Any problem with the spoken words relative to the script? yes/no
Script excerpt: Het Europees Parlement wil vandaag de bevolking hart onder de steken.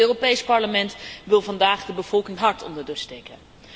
no